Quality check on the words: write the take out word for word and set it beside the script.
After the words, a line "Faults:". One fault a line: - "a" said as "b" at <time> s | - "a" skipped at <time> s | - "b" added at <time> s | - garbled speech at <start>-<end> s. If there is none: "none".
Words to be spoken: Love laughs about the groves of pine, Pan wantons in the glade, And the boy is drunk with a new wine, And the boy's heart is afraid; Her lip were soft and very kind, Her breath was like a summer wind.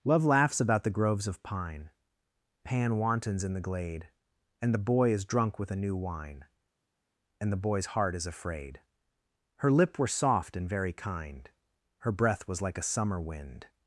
Love laughs about the groves of pine, Pan wantons in the glade, And the boy is drunk with a new wine, And the boy's heart is afraid; Her lip were soft and very kind, Her breath was like a summer wind.
Faults:
none